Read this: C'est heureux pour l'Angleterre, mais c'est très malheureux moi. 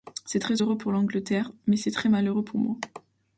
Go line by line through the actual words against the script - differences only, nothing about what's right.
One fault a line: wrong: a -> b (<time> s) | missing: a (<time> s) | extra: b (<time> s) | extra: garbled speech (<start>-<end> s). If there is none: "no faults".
extra: très (0.4 s)
extra: pour (2.4 s)